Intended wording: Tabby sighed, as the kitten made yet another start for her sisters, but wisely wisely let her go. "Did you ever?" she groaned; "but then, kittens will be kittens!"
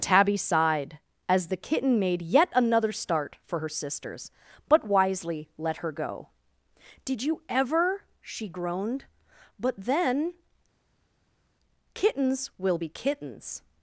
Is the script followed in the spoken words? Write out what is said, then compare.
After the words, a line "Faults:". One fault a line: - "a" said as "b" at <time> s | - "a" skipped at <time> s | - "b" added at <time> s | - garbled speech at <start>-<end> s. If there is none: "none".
Tabby sighed, as the kitten made yet another start for her sisters, but wisely let her go. "Did you ever?" she groaned; "but then, kittens will be kittens!"
Faults:
- "wisely" skipped at 5.5 s